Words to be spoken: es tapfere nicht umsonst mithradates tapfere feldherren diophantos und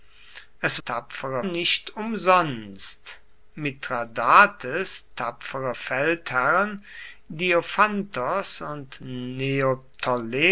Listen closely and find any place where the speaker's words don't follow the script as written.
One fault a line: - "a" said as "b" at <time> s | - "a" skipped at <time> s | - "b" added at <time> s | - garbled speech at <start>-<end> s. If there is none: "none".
none